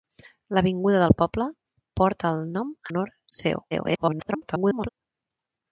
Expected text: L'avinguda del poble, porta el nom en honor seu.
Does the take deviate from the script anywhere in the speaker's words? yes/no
yes